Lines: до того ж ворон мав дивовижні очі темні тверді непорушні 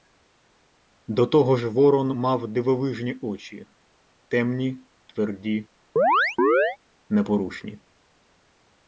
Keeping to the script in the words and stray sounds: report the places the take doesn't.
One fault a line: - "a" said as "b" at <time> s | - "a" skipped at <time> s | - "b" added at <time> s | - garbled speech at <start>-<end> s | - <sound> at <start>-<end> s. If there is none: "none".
- chirp at 6.0-6.8 s